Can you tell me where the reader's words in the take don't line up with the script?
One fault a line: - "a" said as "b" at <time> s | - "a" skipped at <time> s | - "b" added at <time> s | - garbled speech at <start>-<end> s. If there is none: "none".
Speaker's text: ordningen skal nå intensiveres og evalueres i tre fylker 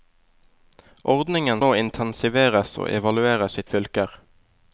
- "skal" skipped at 1.6 s
- "tre" skipped at 3.7 s